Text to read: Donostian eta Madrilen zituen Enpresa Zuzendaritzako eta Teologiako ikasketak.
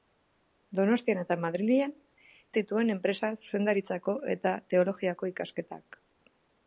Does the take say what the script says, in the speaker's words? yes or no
yes